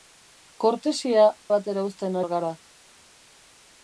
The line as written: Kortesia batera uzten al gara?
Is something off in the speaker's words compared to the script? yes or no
no